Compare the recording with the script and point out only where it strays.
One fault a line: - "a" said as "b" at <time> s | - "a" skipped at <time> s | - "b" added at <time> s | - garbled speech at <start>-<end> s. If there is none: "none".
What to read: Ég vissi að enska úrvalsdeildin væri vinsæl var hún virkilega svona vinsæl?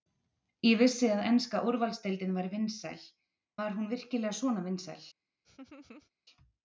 none